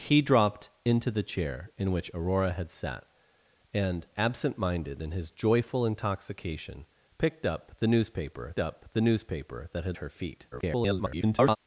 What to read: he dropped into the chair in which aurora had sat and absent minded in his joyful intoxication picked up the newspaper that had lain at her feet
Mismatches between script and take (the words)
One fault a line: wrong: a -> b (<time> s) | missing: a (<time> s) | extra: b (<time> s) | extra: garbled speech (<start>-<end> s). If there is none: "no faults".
extra: up the newspaper (8.6 s)
missing: lain at (10.0 s)
extra: garbled speech (10.5-11.6 s)